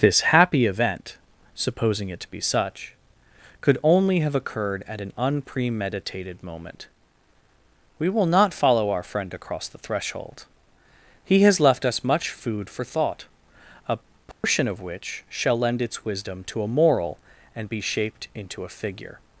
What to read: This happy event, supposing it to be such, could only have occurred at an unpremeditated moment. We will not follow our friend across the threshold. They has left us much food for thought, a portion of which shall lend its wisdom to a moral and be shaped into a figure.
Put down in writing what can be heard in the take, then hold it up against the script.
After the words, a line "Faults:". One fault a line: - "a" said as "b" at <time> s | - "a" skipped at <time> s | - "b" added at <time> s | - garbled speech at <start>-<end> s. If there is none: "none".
This happy event, supposing it to be such, could only have occurred at an unpremeditated moment. We will not follow our friend across the threshold. He has left us much food for thought, a portion of which shall lend its wisdom to a moral and be shaped into a figure.
Faults:
- "They" said as "He" at 11.2 s